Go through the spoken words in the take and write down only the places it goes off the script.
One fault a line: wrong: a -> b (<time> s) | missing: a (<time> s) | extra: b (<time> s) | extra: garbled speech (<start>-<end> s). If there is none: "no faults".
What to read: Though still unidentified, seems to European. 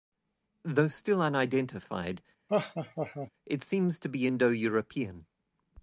extra: it (3.5 s)
extra: be Indo (4.1 s)